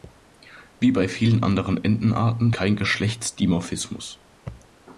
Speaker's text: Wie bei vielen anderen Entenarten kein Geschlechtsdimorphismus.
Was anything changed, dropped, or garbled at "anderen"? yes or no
no